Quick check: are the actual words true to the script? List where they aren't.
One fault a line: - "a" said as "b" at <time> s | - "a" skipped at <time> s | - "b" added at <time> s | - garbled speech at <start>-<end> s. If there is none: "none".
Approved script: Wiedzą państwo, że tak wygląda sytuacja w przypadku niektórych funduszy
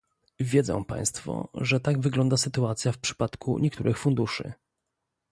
none